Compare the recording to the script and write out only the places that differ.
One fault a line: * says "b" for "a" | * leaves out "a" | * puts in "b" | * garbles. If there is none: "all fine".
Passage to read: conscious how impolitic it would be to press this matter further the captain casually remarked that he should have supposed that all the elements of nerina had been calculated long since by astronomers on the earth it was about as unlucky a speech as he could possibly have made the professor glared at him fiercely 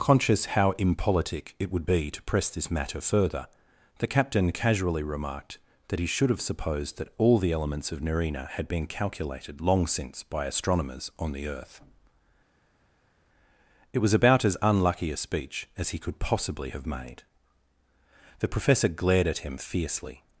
all fine